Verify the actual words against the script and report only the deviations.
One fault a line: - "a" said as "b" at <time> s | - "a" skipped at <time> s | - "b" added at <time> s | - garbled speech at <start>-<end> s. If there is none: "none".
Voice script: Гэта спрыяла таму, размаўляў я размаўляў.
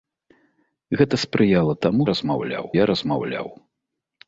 none